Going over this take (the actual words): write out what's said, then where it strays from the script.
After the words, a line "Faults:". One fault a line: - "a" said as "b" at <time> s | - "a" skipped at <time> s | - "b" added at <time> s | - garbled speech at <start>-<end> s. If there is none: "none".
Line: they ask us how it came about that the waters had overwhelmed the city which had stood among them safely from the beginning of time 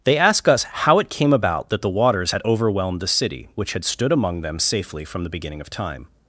they ask us how it came about that the waters had overwhelmed the city which had stood among them safely from the beginning of time
Faults:
none